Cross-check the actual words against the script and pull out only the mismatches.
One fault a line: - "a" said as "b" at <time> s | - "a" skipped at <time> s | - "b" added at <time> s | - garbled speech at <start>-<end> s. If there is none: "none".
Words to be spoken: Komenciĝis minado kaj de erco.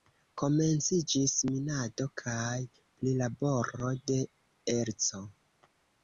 - "prilaboro" added at 3.0 s